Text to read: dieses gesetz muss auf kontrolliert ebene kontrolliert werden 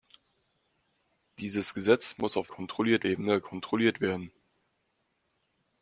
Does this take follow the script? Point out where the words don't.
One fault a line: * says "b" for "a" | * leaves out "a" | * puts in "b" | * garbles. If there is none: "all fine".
all fine